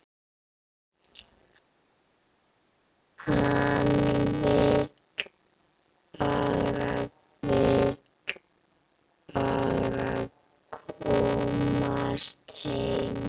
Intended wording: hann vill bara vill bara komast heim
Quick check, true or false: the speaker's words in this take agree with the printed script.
true